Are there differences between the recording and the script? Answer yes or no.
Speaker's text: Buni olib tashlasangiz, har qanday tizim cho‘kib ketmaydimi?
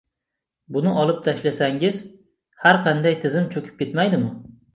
no